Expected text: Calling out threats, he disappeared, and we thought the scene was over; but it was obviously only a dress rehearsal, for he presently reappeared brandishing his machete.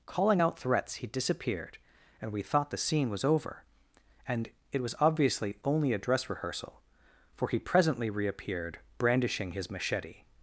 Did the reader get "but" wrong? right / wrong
wrong